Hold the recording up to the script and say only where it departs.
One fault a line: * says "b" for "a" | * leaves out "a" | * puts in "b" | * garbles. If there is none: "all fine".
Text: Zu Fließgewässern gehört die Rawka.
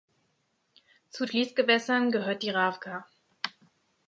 all fine